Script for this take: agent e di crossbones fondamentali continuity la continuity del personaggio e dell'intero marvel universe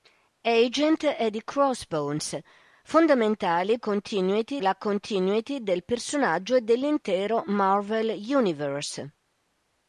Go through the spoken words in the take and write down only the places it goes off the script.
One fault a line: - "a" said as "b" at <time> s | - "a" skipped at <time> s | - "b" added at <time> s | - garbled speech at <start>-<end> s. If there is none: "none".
none